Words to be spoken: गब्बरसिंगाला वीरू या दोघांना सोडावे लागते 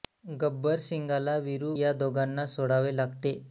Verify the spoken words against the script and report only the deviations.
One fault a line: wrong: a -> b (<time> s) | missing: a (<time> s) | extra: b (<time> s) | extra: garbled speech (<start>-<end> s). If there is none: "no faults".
no faults